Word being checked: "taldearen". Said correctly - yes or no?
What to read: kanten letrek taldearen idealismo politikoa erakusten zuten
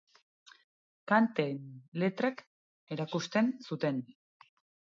no